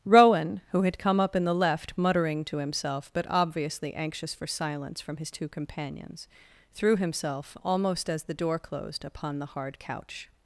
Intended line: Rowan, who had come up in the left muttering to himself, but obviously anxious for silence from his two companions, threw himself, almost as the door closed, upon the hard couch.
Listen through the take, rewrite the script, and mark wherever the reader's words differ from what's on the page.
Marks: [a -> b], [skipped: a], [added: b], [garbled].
Rowan, who had come up in the left muttering to himself, but obviously anxious for silence from his two companions, threw himself, almost as the door closed, upon the hard couch.